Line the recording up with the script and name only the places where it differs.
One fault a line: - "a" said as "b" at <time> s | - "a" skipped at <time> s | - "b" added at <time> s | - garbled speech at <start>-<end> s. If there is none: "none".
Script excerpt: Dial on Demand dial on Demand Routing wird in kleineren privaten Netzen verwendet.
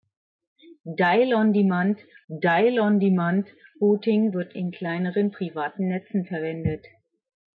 none